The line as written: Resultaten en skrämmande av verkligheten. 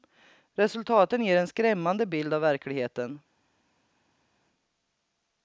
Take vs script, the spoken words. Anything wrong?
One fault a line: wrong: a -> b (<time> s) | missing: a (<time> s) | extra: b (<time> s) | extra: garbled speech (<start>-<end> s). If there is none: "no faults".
extra: ger (1.2 s)
extra: bild (2.1 s)